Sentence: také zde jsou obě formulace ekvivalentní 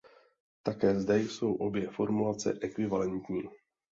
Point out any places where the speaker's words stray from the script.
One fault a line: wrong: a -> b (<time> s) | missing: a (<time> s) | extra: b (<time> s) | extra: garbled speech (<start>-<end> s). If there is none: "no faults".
no faults